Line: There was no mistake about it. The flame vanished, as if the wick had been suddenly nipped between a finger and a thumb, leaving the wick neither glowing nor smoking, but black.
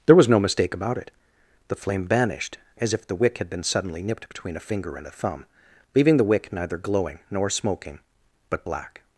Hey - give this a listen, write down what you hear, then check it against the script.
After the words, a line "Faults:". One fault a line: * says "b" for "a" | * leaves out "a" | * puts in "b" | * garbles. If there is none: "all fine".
There was no mistake about it. The flame vanished, as if the wick had been suddenly nipped between a finger and a thumb, leaving the wick neither glowing nor smoking, but black.
Faults:
all fine